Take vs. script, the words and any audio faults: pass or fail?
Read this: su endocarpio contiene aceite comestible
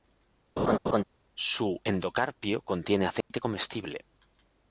fail